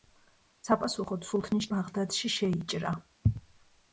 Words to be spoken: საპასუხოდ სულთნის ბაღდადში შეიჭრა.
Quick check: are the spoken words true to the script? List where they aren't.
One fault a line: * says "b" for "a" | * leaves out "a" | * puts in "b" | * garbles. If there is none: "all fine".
all fine